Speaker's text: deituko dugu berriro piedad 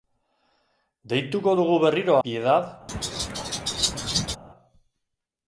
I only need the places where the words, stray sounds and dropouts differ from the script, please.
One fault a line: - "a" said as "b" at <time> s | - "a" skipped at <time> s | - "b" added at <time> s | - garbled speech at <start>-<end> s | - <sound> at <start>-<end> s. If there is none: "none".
- laugh at 2.9-4.4 s